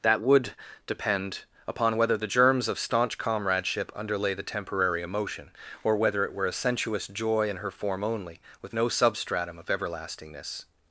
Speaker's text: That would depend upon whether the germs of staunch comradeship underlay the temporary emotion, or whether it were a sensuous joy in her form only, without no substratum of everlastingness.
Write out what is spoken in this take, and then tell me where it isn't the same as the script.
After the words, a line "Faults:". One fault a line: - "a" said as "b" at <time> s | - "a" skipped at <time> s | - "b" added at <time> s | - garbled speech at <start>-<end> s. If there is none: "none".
That would depend upon whether the germs of staunch comradeship underlay the temporary emotion, or whether it were a sensuous joy in her form only, with no substratum of everlastingness.
Faults:
- "without" said as "with" at 8.6 s